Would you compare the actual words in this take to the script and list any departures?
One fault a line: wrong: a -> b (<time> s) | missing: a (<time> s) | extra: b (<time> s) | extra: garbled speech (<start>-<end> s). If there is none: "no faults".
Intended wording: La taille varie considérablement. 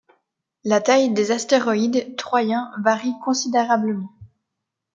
extra: des astéroïdes troyens (1.1 s)